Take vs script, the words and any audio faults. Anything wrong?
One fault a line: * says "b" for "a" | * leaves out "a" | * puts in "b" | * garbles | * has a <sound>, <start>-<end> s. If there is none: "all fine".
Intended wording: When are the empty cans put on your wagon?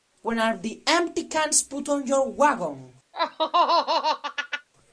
* has a laugh, 3.1-4.7 s